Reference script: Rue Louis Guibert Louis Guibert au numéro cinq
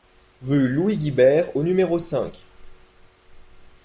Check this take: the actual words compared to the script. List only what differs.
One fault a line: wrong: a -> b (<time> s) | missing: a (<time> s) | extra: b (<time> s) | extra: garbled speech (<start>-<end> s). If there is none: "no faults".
missing: Louis Guibert (1.6 s)